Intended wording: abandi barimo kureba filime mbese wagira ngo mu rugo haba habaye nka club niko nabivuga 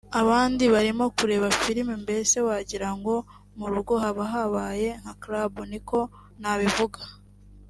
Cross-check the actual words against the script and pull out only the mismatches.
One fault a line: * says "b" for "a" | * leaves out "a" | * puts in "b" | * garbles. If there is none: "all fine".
all fine